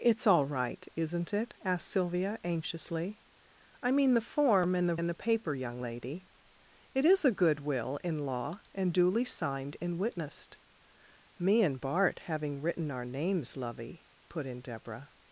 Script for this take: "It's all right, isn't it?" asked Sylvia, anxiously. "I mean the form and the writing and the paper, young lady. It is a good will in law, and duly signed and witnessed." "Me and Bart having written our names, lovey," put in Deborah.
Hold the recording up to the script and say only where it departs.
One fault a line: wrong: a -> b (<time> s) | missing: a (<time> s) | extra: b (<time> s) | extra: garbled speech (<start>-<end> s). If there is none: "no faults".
missing: writing (5.0 s)